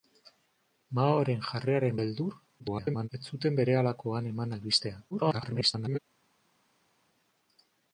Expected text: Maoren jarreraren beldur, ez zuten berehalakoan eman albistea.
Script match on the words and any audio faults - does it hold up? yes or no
no